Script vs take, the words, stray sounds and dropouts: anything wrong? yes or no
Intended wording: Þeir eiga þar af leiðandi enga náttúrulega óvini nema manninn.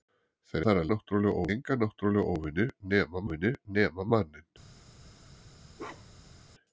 yes